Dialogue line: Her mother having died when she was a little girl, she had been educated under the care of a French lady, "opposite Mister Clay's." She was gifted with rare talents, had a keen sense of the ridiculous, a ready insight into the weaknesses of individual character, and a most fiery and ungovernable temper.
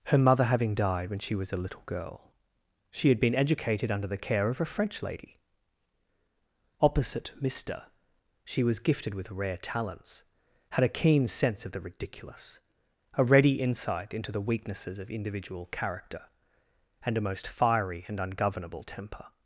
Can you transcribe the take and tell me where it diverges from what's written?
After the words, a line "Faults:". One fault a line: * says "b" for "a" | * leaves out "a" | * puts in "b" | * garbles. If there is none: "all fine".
Her mother having died when she was a little girl, she had been educated under the care of a French lady, "opposite Mister She was gifted with rare talents, had a keen sense of the ridiculous, a ready insight into the weaknesses of individual character, and a most fiery and ungovernable temper.
Faults:
* leaves out "Clay's"